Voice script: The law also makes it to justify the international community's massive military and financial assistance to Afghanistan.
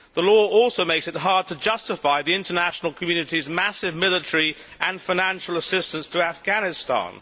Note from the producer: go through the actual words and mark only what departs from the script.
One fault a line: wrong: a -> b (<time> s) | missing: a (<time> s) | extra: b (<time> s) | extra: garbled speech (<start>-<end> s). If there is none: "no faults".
extra: hard (1.2 s)